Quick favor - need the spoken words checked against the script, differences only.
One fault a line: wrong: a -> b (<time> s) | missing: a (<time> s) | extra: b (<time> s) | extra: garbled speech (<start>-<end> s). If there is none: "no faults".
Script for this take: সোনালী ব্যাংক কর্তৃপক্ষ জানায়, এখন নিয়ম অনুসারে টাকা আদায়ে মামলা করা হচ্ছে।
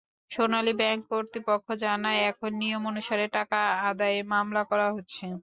no faults